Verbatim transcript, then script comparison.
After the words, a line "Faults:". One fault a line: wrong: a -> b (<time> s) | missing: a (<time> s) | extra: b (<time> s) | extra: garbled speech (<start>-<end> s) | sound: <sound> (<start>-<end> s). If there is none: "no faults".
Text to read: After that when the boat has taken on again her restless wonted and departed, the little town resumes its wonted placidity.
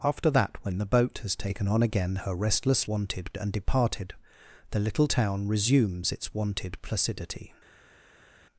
After that when the boat has taken on again her restless wonted and departed, the little town resumes its wonted placidity.
Faults:
no faults